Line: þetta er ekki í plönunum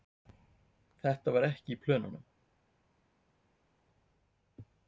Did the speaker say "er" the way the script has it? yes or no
no